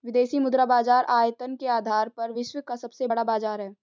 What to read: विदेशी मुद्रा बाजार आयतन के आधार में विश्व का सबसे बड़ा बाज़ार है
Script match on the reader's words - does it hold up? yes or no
no